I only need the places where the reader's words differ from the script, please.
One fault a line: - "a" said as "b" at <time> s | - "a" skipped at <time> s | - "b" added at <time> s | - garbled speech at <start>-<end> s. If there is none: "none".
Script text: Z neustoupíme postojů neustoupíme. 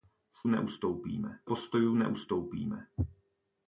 none